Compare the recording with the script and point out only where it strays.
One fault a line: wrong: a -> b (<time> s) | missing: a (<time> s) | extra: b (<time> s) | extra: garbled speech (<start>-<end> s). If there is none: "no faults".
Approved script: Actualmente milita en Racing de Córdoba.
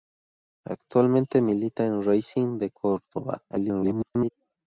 extra: garbled speech (3.5-4.3 s)